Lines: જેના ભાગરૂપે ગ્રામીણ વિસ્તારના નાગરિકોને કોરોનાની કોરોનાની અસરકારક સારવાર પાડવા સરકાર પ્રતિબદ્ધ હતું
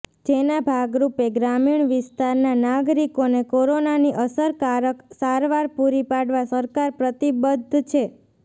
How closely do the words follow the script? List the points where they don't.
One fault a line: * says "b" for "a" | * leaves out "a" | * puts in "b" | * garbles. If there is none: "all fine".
* leaves out "કોરોનાની"
* puts in "પૂરી"
* says "છે" for "હતું"